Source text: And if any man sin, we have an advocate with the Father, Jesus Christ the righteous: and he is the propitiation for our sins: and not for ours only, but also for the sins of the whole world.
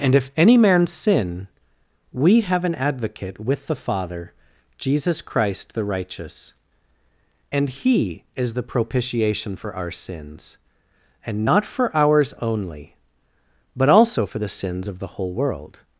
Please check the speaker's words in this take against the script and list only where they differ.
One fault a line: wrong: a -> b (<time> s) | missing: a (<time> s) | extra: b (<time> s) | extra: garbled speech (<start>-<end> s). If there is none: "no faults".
no faults